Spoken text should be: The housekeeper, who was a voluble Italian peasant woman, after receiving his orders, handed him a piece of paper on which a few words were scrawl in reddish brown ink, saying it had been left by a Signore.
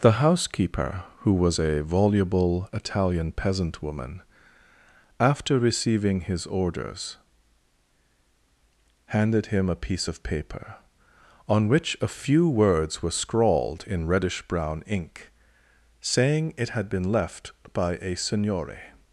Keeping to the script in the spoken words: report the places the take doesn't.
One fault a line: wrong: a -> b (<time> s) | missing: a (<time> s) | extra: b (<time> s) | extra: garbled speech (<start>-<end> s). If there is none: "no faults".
wrong: scrawl -> scrawled (13.1 s)